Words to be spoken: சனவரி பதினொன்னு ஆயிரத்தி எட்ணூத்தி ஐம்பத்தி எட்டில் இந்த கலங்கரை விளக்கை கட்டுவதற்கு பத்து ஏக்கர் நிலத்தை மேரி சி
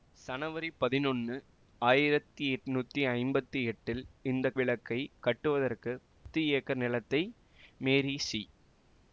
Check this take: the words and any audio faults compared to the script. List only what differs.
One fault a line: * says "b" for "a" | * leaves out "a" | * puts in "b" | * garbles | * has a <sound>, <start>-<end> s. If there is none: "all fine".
* leaves out "கலங்கரை"
* has a dropout, 6.1-6.3 s